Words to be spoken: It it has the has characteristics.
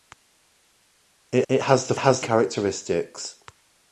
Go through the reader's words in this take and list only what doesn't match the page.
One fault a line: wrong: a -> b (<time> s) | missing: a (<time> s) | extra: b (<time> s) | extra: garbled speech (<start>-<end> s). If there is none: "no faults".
no faults